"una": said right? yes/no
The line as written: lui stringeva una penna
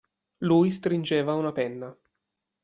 yes